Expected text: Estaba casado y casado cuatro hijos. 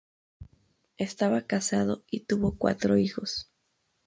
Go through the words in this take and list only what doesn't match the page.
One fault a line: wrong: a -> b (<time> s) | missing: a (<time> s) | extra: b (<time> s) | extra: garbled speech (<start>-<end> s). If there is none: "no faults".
wrong: casado -> tuvo (2.2 s)